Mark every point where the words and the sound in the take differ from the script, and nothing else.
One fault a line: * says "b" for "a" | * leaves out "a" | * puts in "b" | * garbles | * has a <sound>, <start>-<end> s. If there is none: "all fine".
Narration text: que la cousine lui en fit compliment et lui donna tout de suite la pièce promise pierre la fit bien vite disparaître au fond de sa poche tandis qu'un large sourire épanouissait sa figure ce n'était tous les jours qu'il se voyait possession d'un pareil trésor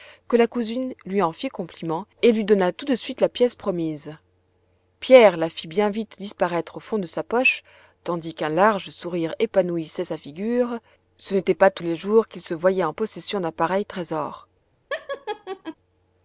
* puts in "pas"
* puts in "en"
* has a laugh, 14.9-15.8 s